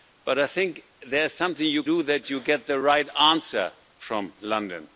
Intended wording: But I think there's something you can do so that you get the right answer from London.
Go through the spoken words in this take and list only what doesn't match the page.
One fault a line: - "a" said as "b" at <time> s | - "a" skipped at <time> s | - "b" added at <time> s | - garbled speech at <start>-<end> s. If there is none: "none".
- "can" skipped at 1.8 s